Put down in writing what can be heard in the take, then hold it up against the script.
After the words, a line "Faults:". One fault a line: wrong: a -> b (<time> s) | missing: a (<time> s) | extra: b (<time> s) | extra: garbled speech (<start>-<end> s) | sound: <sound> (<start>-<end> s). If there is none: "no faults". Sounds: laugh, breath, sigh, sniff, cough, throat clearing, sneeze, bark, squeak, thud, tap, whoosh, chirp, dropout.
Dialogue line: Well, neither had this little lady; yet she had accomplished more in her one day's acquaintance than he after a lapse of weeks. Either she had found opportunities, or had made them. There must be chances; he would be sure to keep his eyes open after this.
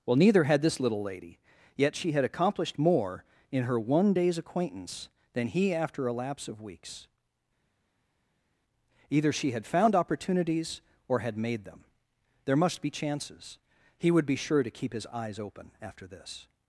Well, neither had this little lady; yet she had accomplished more in her one day's acquaintance than he after a lapse of weeks. Either she had found opportunities, or had made them. There must be chances; he would be sure to keep his eyes open after this.
Faults:
no faults